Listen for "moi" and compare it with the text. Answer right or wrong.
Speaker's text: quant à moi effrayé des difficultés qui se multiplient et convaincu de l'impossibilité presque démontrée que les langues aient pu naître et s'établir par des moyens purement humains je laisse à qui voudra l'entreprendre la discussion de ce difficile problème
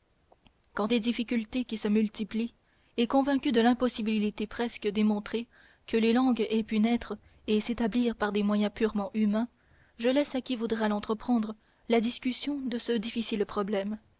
wrong